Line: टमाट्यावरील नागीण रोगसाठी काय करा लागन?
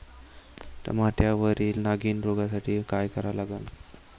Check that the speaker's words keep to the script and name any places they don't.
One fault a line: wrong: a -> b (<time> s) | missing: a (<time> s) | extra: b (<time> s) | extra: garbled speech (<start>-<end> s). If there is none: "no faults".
no faults